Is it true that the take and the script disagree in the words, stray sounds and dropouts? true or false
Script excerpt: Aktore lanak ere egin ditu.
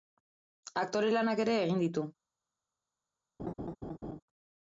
true